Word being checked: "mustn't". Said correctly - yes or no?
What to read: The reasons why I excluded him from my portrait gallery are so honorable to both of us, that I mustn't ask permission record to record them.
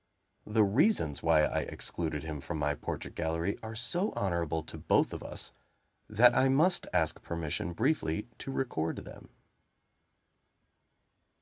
no